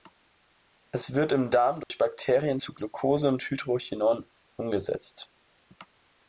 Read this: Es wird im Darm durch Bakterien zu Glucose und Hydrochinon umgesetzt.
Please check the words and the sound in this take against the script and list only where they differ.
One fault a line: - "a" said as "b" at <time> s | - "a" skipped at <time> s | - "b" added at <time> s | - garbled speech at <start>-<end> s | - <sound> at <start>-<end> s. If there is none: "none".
- dropout at 1.8-1.9 s